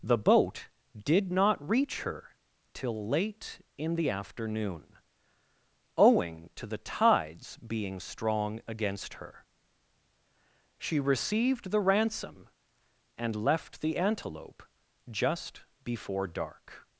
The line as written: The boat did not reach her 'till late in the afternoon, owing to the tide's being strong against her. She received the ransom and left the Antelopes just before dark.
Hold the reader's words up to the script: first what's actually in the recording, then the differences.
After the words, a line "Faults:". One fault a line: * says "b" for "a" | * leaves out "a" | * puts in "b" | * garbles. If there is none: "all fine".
The boat did not reach her 'till late in the afternoon, owing to the tide's being strong against her. She received the ransom and left the Antelope just before dark.
Faults:
* says "Antelope" for "Antelopes"